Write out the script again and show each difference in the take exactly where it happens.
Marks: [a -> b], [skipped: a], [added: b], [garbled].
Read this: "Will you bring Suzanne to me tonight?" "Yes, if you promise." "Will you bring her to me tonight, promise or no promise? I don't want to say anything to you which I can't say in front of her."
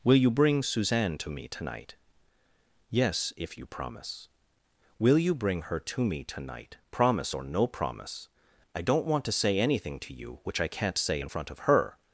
"Will you bring Suzanne to me tonight?" "Yes, if you promise." "Will you bring her to me tonight, promise or no promise? I don't want to say anything to you which I can't say in front of her."